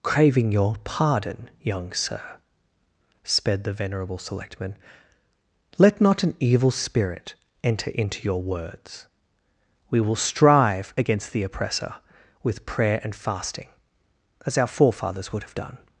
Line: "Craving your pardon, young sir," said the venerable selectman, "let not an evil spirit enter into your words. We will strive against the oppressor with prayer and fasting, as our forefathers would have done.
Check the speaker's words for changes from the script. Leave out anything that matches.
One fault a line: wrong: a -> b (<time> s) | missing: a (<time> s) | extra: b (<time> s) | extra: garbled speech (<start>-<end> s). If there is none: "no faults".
wrong: said -> sped (3.2 s)